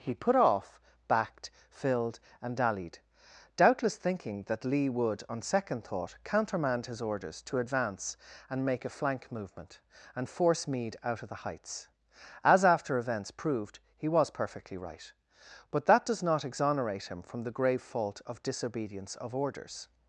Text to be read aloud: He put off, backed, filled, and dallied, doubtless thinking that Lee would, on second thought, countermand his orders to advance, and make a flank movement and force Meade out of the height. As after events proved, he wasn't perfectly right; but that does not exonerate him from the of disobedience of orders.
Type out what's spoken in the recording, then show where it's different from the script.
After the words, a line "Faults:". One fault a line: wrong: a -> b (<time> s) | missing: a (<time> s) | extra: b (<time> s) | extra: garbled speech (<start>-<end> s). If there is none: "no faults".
He put off, backed, filled, and dallied, doubtless thinking that Lee would, on second thought, countermand his orders to advance, and make a flank movement and force Meade out of the heights. As after events proved, he was perfectly right; but that does not exonerate him from the grave fault of disobedience of orders.
Faults:
wrong: height -> heights (11.4 s)
wrong: wasn't -> was (14.1 s)
extra: grave fault (17.5 s)